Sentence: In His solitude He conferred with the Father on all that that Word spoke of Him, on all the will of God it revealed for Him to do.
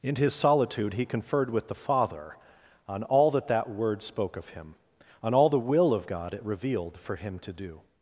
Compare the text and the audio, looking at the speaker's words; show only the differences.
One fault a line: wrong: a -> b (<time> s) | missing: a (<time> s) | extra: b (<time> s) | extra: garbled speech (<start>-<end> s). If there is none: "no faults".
no faults